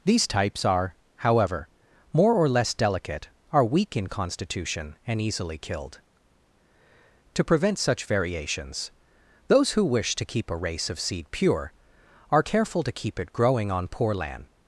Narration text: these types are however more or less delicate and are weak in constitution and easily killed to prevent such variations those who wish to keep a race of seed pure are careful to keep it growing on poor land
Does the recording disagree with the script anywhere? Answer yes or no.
yes